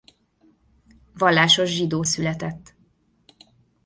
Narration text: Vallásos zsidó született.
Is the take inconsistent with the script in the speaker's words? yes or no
no